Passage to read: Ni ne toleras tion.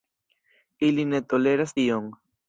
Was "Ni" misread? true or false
true